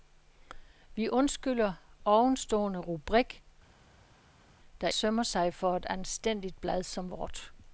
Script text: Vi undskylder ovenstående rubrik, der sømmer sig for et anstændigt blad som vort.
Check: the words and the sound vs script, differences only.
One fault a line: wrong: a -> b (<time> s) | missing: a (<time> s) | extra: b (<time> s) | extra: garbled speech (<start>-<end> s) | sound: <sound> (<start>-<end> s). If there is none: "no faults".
no faults